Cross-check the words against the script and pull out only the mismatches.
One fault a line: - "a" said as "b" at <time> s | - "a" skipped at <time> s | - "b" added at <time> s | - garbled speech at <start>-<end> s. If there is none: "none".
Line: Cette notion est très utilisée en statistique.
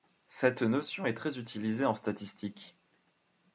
none